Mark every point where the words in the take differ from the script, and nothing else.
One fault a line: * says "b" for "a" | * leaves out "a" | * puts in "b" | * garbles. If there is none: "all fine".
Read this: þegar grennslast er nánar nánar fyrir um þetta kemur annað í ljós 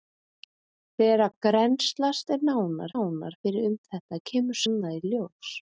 all fine